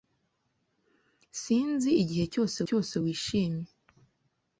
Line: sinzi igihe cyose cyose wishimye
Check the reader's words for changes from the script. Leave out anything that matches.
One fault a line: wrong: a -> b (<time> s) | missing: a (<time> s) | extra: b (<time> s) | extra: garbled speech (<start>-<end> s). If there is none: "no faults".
no faults